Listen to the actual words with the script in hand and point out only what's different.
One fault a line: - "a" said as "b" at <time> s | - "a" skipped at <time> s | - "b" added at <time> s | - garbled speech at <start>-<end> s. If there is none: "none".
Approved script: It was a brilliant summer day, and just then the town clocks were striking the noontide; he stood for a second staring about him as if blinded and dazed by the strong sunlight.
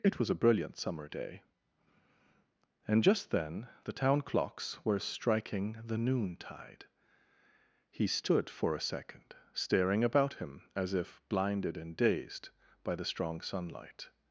none